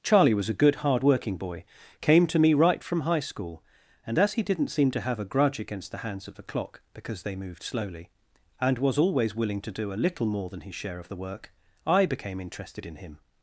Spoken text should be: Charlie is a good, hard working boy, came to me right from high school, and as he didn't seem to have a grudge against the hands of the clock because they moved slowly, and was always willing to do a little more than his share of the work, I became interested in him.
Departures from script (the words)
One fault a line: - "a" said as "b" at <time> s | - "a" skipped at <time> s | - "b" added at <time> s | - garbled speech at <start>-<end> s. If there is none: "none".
- "is" said as "was" at 0.3 s